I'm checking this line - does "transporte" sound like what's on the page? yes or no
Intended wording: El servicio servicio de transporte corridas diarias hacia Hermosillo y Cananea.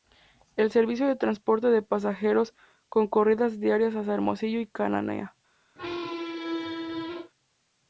no